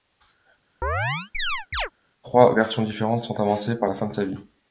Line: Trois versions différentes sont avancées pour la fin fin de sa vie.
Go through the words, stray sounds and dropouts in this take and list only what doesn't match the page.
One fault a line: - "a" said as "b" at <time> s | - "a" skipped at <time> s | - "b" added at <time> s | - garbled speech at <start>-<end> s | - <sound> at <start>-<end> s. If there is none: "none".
- chirp at 0.8-1.9 s
- "fin" skipped at 4.1 s